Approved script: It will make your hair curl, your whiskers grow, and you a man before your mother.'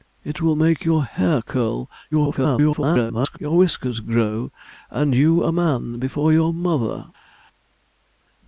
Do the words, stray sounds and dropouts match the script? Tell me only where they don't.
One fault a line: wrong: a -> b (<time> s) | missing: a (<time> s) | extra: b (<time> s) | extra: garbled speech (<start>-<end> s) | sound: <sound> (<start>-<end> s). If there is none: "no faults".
extra: garbled speech (2.1-3.4 s)